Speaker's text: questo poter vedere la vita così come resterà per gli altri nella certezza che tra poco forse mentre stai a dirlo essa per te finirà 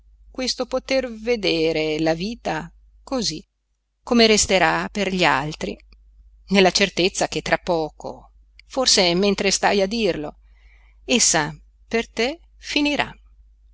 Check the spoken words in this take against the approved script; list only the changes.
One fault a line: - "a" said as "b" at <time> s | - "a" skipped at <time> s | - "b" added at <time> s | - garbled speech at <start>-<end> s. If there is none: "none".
none